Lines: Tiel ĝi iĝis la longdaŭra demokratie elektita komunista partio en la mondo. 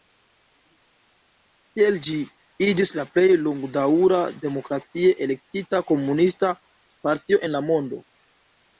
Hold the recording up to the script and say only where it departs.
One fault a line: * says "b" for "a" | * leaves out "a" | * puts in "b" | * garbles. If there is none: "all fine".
* puts in "plej"